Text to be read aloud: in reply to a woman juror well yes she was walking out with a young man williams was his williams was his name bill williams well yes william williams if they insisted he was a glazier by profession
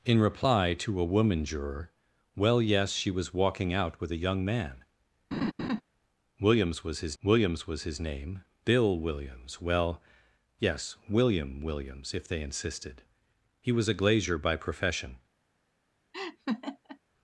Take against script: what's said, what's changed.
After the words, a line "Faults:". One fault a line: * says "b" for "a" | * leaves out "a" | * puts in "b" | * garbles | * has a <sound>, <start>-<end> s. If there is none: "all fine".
in reply to a woman juror well yes she was walking out with a young man williams was his williams was his name bill williams well yes william williams if they insisted he was a glazier by profession
Faults:
* has a laugh, 5.3-5.8 s
* has a laugh, 16.1-17.0 s